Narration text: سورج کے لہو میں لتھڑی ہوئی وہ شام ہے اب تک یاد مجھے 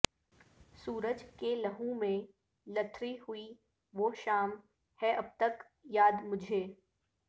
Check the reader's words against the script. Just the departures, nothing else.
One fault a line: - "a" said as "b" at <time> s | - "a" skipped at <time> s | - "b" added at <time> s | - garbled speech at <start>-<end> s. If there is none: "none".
none